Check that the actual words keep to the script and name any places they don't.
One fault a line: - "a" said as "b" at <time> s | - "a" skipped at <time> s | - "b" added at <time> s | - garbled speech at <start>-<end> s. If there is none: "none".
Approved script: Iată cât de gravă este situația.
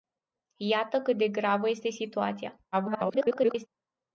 - garbled speech at 2.7-3.7 s